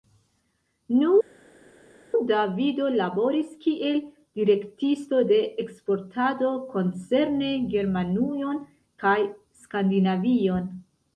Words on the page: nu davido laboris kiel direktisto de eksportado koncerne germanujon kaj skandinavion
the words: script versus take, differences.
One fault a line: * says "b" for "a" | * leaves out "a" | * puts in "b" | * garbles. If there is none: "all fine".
all fine